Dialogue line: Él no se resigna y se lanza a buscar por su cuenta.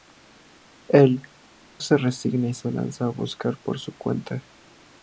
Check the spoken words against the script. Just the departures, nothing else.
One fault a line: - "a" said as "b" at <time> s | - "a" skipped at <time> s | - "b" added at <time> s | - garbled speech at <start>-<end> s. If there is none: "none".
- "no" skipped at 1.2 s